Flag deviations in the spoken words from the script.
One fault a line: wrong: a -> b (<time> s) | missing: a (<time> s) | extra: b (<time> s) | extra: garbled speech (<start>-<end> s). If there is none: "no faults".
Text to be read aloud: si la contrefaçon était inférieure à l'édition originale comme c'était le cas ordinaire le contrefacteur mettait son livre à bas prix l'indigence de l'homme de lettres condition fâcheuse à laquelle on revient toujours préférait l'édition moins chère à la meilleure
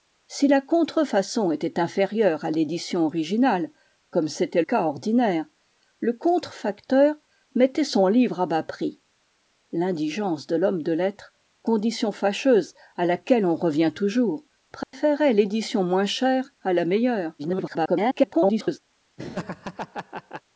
missing: le (4.6 s)
extra: garbled speech (17.4-18.8 s)